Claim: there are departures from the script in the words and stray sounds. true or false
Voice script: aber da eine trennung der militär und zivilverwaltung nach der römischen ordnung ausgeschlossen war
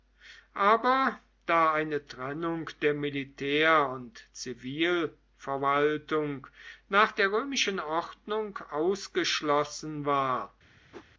true